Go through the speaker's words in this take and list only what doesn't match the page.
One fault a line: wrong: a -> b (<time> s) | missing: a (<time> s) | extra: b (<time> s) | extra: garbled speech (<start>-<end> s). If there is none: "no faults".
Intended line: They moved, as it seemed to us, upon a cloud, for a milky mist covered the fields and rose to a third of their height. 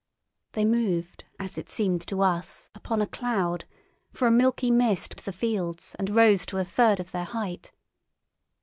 missing: covered (5.2 s)